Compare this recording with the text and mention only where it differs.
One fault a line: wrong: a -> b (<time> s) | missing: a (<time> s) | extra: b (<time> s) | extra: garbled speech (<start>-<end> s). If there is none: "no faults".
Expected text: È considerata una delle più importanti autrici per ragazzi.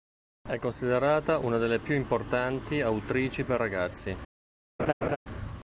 no faults